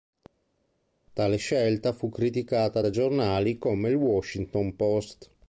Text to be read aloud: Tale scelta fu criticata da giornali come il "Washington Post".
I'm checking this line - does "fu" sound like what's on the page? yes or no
yes